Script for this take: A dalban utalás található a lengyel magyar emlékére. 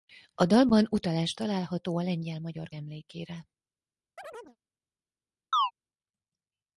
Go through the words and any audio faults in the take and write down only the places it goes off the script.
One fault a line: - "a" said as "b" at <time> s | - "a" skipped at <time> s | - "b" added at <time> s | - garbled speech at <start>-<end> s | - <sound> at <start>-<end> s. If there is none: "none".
- chirp at 4.2-4.6 s
- chirp at 5.5-5.7 s